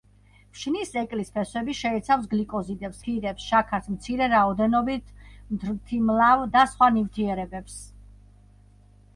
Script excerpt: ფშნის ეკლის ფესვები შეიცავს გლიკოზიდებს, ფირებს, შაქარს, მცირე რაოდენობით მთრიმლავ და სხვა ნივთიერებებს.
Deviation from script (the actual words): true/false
false